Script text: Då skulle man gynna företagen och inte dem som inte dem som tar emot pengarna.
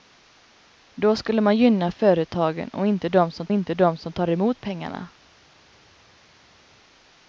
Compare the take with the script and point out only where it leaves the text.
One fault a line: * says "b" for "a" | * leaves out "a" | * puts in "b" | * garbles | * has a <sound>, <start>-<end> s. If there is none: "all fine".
all fine